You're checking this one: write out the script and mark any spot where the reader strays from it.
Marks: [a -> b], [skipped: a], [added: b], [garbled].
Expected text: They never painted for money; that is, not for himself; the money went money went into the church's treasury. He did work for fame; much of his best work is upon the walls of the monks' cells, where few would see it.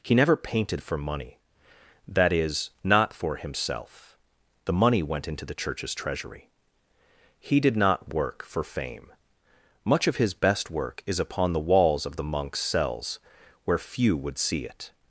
[They -> He] never painted for money; that is, not for himself; the money went [skipped: money went] into the church's treasury. He did [added: not] work for fame; much of his best work is upon the walls of the monks' cells, where few would see it.